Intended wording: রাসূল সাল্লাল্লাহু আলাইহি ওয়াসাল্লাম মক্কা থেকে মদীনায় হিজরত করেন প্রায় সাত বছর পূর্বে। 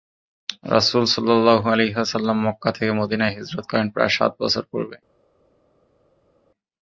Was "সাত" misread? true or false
false